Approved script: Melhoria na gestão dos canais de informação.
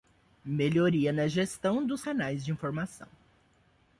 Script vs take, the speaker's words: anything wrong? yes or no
no